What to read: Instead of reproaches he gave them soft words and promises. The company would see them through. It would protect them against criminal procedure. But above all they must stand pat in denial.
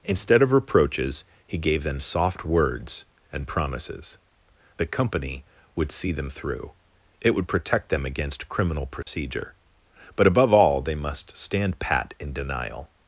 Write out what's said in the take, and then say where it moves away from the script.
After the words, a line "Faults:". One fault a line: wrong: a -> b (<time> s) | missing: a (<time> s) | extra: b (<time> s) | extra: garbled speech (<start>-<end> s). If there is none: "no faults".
Instead of reproaches he gave them soft words and promises. The company would see them through. It would protect them against criminal procedure. But above all they must stand pat in denial.
Faults:
no faults